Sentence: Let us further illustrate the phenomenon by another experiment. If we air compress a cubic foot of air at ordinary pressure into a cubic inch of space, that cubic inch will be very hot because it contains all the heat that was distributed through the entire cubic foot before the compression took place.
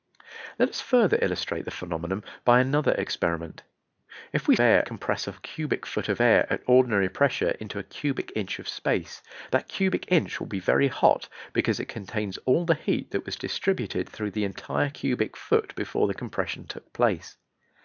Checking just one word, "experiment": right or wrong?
right